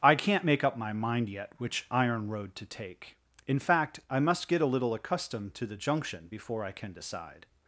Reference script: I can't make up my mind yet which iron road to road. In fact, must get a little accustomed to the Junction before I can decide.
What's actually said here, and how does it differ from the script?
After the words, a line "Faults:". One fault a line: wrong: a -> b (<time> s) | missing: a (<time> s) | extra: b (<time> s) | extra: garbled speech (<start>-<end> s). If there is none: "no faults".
I can't make up my mind yet which iron road to take. In fact, I must get a little accustomed to the Junction before I can decide.
Faults:
wrong: road -> take (2.6 s)
extra: I (4.1 s)